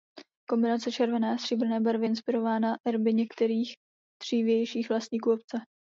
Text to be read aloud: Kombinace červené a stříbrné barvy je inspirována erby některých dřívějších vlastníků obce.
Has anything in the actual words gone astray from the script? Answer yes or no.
no